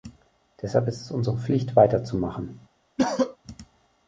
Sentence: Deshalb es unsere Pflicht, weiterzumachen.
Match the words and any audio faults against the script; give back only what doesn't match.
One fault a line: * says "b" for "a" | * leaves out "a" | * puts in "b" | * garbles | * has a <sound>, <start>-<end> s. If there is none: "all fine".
* puts in "ist"
* has a cough, 3.0-3.4 s